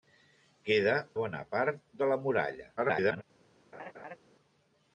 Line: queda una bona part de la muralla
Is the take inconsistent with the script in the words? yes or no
yes